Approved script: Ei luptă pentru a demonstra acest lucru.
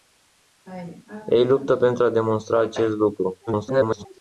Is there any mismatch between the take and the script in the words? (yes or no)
yes